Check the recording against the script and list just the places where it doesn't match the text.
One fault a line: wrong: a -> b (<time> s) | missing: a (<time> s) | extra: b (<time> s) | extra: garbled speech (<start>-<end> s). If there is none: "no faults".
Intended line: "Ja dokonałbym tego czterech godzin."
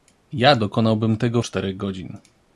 no faults